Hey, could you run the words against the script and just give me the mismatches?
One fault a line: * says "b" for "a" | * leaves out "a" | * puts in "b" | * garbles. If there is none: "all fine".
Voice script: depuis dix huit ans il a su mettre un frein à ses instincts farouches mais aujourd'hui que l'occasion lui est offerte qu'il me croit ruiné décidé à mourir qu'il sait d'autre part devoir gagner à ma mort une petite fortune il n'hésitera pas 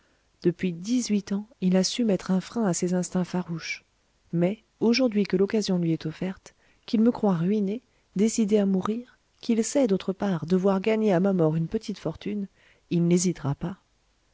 all fine